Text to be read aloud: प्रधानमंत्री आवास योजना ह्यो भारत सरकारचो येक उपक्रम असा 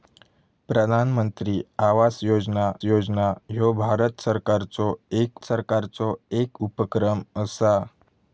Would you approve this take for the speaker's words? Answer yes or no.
no